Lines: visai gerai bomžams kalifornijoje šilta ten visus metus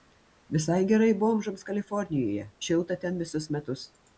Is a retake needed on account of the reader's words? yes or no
no